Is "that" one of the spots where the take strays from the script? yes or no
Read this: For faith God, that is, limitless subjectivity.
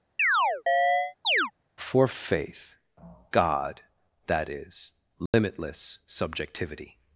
no